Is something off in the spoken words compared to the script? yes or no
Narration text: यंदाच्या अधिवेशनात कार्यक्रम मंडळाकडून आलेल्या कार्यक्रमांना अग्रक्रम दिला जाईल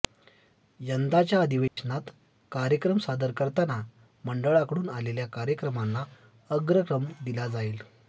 yes